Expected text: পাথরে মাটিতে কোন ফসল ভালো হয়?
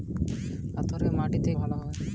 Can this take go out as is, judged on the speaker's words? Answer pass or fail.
fail